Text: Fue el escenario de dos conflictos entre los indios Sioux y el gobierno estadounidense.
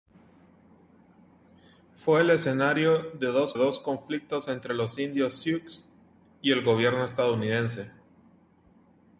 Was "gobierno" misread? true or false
false